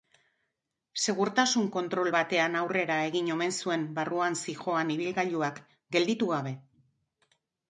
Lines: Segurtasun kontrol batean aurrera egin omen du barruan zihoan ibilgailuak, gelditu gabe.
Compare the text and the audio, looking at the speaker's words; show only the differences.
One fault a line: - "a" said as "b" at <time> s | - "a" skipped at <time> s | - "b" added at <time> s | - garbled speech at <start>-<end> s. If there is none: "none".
- "du" said as "zuen" at 3.6 s